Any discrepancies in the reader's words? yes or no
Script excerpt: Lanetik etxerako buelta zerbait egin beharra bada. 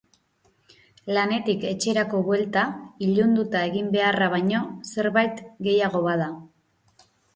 yes